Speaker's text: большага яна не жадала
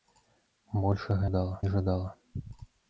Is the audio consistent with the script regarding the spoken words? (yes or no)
no